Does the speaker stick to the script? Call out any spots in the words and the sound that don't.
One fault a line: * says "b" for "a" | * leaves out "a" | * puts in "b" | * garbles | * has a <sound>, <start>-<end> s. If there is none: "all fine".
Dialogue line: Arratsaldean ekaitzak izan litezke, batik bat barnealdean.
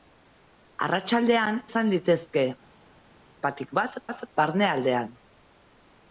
* leaves out "ekaitzak"
* puts in "bat"